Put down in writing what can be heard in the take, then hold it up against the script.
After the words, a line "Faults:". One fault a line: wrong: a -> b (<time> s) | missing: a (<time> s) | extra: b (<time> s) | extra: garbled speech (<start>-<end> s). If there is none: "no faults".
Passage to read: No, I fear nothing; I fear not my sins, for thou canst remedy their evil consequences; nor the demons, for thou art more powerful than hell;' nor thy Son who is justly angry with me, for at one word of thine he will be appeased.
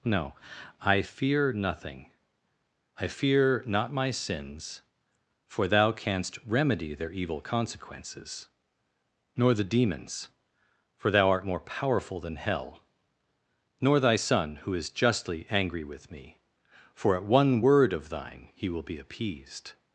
No, I fear nothing; I fear not my sins, for thou canst remedy their evil consequences; nor the demons, for thou art more powerful than hell;' nor thy Son who is justly angry with me, for at one word of thine he will be appeased.
Faults:
no faults